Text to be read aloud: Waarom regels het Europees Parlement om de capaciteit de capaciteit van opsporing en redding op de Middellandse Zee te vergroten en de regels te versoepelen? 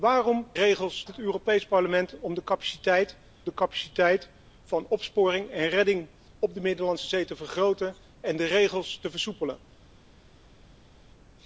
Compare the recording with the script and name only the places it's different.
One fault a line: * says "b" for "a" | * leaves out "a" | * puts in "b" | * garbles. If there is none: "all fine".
all fine